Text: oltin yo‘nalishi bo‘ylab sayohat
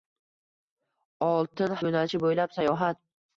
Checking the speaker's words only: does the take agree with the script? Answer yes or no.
yes